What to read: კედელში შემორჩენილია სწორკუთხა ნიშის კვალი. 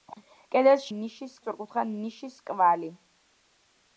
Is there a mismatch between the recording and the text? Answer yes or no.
yes